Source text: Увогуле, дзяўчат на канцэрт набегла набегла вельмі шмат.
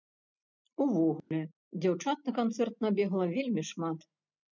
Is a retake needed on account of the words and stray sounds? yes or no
yes